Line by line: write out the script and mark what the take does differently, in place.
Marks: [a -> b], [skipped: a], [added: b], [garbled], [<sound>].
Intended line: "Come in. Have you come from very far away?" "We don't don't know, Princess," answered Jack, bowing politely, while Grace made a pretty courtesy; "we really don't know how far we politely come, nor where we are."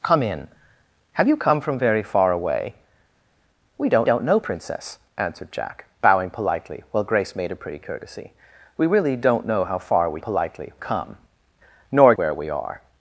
"Come in. Have you come from very far away?" "We don't don't know, Princess," answered Jack, bowing politely, while Grace made a pretty courtesy; "we really don't know how far we politely come, nor where we are."